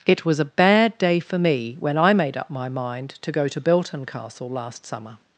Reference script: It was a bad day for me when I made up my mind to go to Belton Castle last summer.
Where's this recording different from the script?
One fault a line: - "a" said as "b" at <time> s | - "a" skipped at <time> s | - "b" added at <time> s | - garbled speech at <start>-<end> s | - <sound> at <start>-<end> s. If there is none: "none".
none